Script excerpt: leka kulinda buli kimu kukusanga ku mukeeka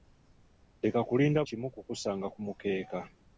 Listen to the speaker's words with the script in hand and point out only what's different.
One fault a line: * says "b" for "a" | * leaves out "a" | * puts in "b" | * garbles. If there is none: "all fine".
* leaves out "buli"